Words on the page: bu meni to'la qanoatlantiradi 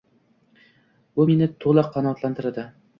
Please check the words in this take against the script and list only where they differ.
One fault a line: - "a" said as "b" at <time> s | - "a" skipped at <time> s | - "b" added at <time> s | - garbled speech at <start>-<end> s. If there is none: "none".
none